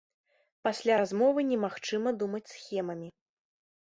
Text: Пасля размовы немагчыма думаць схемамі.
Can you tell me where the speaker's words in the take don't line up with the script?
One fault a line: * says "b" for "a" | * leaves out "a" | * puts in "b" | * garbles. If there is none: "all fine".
all fine